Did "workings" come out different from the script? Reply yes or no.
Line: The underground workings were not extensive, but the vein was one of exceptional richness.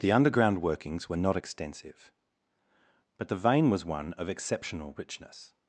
no